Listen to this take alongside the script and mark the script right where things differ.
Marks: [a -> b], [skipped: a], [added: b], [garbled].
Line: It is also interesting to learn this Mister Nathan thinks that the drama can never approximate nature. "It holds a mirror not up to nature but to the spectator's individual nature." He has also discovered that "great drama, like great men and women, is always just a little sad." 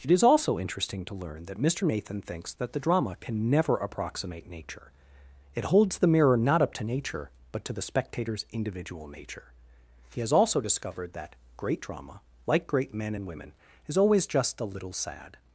It is also interesting to learn [this -> that] Mister Nathan thinks that the drama can never approximate nature. "It holds [a -> the] mirror not up to nature but to the spectator's individual nature." He has also discovered that "great drama, like great men and women, is always just a little sad."